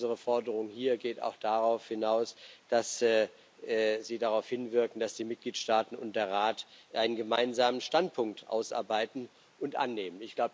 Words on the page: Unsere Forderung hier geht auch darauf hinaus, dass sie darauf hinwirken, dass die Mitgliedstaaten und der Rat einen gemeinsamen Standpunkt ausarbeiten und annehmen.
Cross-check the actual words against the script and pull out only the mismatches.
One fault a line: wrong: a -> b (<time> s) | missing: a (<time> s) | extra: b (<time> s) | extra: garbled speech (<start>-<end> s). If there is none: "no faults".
no faults